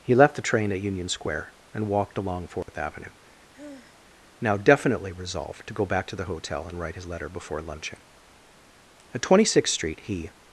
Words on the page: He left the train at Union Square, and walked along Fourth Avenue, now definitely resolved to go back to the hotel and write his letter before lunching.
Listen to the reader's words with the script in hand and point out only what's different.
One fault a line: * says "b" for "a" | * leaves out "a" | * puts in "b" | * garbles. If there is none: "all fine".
* puts in "At Twenty sixth Street he"